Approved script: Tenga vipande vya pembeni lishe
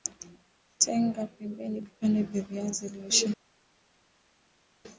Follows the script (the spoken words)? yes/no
no